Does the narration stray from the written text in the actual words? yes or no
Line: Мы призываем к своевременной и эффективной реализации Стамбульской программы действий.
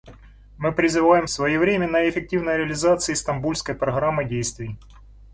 no